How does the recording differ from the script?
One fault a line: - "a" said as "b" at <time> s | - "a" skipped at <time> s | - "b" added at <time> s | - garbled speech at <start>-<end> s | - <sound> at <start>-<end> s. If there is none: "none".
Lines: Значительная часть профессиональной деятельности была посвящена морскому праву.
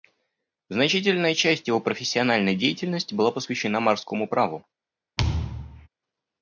- "его" added at 1.7 s
- thud at 5.2-5.9 s